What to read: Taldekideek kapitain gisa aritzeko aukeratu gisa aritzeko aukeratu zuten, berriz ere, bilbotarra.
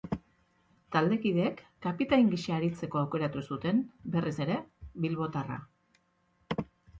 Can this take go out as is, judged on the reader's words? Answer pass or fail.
fail